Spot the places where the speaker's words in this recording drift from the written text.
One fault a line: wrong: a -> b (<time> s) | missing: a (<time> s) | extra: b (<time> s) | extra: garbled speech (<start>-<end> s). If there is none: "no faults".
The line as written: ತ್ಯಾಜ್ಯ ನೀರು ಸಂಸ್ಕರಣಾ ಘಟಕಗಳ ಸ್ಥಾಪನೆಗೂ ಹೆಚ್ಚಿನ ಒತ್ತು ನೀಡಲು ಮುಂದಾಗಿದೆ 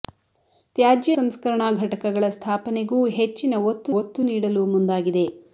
missing: ನೀರು (1.1 s)
extra: ಒತ್ತು (4.0 s)